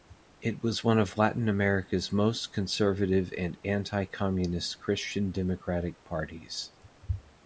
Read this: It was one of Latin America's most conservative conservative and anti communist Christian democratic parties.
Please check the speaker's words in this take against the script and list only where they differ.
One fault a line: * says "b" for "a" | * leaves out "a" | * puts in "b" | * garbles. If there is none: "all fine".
* leaves out "conservative"